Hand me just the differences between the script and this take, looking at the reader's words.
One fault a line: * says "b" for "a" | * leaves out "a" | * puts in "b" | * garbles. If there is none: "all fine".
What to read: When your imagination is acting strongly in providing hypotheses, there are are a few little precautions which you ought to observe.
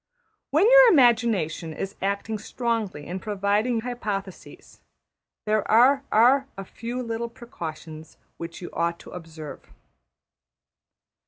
all fine